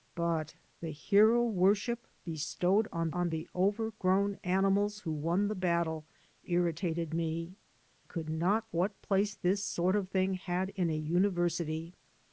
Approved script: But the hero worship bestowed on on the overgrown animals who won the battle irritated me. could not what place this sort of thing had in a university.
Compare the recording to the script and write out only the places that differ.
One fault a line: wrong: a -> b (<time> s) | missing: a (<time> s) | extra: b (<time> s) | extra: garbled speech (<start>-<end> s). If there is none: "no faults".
no faults